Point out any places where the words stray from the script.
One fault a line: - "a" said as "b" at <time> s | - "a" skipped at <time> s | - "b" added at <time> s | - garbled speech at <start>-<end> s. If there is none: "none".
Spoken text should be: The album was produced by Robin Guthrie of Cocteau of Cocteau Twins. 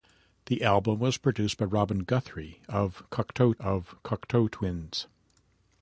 none